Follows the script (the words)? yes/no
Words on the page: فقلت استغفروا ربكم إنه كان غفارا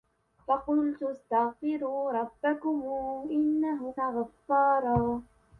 no